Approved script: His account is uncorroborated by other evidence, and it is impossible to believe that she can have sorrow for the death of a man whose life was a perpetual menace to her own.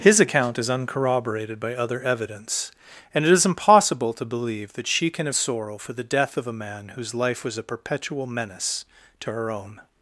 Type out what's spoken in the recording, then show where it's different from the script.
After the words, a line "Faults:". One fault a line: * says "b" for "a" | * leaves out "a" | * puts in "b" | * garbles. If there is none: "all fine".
His account is uncorroborated by other evidence, and it is impossible to believe that she can have sorrow for the death of a man whose life was a perpetual menace to her own.
Faults:
all fine